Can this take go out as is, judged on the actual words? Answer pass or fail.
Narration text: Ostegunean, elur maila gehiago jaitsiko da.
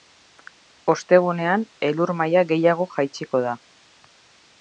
pass